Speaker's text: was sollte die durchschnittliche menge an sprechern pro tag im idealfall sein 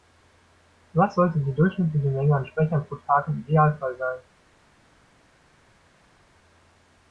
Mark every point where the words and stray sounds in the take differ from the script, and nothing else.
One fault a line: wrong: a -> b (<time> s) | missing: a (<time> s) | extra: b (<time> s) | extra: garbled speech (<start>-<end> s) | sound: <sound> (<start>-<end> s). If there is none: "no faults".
no faults